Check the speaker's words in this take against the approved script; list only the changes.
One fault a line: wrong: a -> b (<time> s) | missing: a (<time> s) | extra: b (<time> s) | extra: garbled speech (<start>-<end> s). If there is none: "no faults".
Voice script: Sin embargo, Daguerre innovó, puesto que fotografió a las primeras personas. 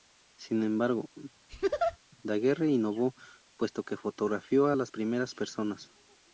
no faults